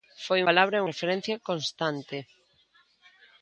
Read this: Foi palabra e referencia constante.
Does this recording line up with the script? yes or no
yes